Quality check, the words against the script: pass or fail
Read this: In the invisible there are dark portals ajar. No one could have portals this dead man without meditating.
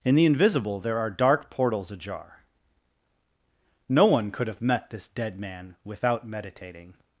fail